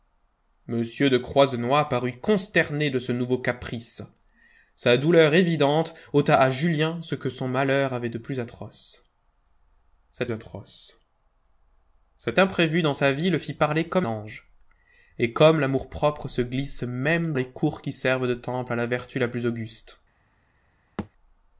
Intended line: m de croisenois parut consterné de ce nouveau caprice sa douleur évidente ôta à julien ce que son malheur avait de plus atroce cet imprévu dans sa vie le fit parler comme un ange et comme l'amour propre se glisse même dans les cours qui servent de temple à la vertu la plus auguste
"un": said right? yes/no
no